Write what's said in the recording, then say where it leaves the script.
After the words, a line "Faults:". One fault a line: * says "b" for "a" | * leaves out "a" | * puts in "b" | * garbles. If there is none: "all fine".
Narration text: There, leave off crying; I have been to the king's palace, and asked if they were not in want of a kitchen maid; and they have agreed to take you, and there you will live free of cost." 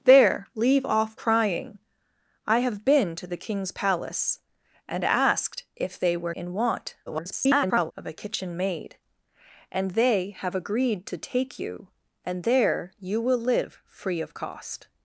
There, leave off crying; I have been to the king's palace, and asked if they were in want [garbled] of a kitchen maid; and they have agreed to take you, and there you will live free of cost."
Faults:
* leaves out "not"
* garbles